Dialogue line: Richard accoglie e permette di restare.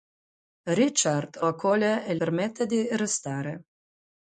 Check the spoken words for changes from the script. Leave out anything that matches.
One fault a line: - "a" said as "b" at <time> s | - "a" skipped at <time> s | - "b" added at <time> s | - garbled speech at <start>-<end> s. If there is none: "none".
none